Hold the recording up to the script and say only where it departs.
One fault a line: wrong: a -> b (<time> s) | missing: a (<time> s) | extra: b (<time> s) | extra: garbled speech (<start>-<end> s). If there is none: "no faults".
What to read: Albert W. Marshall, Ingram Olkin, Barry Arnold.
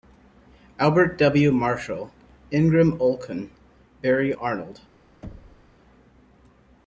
no faults